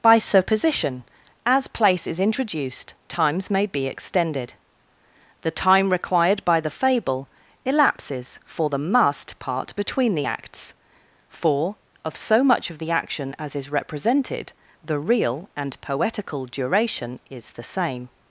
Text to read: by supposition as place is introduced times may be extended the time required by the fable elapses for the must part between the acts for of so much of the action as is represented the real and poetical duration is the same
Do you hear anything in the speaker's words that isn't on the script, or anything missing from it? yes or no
no